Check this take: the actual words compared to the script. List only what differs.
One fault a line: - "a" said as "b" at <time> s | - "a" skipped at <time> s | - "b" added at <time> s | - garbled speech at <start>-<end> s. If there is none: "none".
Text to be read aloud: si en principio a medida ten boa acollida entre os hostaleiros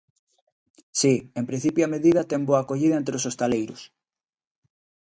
none